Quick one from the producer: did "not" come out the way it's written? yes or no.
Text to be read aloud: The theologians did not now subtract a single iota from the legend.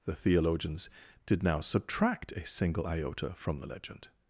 no